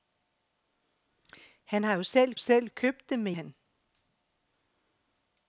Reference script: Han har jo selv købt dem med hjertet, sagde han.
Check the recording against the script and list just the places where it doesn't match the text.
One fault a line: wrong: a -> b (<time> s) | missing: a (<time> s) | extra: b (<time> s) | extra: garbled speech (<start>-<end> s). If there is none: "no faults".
extra: selv (2.4 s)
missing: hjertet sagde (3.3 s)